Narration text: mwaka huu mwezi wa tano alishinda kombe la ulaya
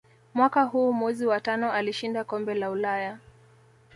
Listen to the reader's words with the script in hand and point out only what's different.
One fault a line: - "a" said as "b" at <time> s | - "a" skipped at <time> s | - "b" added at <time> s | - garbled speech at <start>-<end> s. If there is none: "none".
none